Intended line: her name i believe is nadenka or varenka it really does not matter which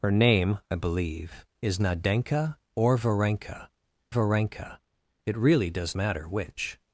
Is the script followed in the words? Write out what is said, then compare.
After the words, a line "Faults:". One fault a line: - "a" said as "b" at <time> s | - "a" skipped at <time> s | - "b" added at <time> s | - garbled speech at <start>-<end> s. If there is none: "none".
her name i believe is nadenka or varenka varenka it really does matter which
Faults:
- "varenka" added at 4.1 s
- "not" skipped at 6.0 s